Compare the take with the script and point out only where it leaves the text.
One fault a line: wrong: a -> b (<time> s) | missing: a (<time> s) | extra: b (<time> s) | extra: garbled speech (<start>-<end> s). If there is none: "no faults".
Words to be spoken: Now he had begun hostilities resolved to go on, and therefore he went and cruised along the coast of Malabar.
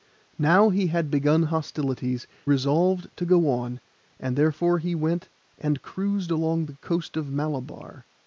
no faults